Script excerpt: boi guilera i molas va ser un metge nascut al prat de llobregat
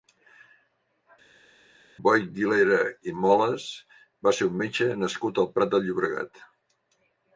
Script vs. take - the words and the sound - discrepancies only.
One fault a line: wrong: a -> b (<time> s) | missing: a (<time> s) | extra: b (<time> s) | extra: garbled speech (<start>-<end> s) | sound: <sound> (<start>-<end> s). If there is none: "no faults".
no faults